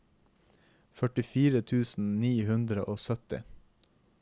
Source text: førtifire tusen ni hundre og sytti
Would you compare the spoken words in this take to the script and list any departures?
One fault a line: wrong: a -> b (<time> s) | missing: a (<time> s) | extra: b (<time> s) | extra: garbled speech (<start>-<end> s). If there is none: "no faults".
no faults